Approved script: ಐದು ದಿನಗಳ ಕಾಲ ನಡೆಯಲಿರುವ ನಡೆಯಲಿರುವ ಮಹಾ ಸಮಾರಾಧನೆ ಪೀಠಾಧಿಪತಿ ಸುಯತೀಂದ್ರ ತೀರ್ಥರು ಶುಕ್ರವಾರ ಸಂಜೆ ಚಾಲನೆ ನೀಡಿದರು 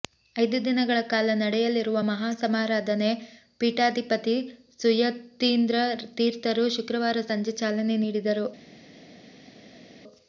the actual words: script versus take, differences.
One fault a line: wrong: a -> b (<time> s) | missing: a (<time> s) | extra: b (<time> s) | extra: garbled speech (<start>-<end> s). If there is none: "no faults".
missing: ನಡೆಯಲಿರುವ (2.0 s)